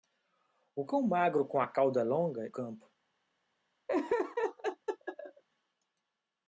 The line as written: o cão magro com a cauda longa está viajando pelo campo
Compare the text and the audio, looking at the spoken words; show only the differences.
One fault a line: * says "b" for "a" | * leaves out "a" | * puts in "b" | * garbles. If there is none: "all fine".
* leaves out "está viajando pelo"